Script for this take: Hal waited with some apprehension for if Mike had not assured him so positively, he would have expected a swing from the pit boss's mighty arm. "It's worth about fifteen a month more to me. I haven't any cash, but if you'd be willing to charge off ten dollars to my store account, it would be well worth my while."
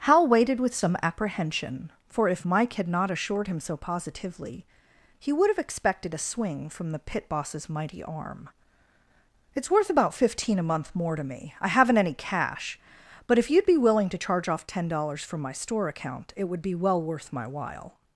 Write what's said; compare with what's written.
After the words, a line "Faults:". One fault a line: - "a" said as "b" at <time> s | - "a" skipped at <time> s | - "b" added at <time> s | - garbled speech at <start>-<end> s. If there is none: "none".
Hal waited with some apprehension for if Mike had not assured him so positively, he would have expected a swing from the pit boss's mighty arm. "It's worth about fifteen a month more to me. I haven't any cash, but if you'd be willing to charge off ten dollars from my store account, it would be well worth my while."
Faults:
- "to" said as "from" at 15.2 s